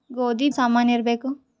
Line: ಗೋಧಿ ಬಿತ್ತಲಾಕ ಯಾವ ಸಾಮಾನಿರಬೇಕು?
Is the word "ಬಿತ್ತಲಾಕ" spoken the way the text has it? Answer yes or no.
no